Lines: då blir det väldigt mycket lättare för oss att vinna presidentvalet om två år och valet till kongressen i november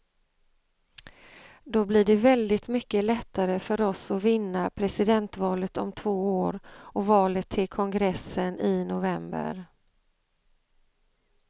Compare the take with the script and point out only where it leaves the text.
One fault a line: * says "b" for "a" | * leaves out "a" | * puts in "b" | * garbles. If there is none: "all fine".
all fine